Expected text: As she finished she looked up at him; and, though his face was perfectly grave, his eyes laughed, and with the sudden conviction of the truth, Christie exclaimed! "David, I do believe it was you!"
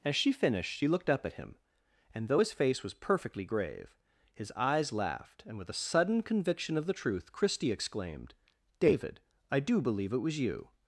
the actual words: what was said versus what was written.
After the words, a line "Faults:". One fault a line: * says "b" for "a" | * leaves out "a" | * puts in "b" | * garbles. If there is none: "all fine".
As she finished she looked up at him; and, though his face was perfectly grave, his eyes laughed, and with a sudden conviction of the truth, Christie exclaimed! "David, I do believe it was you!"
Faults:
* says "a" for "the"